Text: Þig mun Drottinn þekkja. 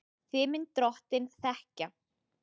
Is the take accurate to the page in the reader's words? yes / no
yes